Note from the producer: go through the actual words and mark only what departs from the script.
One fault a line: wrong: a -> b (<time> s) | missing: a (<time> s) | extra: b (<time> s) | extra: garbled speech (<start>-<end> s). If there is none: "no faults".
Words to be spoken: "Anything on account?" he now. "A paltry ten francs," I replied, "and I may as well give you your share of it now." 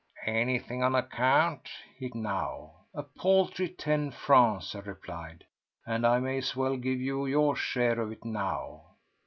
no faults